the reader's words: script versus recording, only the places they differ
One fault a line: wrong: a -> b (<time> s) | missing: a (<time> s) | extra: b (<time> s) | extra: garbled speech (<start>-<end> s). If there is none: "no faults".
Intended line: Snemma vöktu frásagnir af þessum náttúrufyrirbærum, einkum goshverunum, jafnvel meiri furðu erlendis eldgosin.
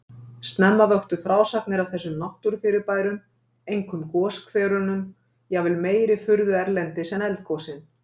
extra: en (7.2 s)